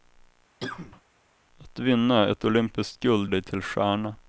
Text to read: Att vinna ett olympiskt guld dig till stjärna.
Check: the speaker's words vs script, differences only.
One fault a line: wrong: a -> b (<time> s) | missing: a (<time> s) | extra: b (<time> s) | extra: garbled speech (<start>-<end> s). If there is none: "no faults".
no faults